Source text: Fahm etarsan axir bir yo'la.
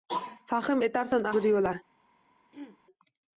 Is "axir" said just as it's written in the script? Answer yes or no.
no